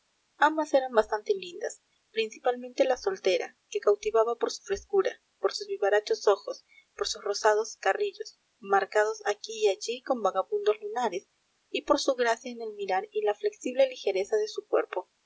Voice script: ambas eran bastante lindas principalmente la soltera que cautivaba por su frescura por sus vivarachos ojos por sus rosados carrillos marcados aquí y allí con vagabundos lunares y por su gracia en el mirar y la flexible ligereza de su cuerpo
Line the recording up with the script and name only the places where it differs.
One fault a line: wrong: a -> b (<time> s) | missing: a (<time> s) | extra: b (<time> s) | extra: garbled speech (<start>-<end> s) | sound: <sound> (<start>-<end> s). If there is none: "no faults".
no faults